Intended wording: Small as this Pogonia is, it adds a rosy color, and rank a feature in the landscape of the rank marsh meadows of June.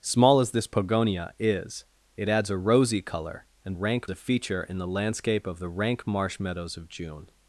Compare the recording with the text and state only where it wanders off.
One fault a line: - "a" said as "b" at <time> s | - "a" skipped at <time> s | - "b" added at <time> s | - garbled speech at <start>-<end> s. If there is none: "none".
none